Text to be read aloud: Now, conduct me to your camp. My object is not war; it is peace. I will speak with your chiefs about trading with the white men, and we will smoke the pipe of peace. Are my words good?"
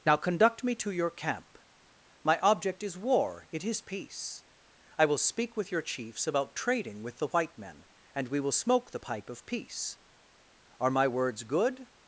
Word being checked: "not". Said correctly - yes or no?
no